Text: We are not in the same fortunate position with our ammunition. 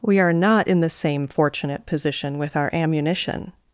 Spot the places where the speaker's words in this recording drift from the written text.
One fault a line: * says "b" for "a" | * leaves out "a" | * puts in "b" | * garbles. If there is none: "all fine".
all fine